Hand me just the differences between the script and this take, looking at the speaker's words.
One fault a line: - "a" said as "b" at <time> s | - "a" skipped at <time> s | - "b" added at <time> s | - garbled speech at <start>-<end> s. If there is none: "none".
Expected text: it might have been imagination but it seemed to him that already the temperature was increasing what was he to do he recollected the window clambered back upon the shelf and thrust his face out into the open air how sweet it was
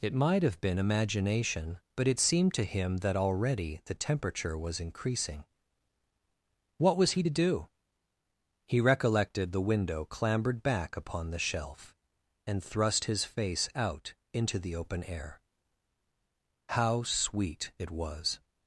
none